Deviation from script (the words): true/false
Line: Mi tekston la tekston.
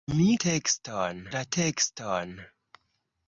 false